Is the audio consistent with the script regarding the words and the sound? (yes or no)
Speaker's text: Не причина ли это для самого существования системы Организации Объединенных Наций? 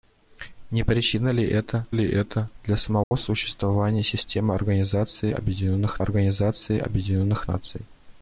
no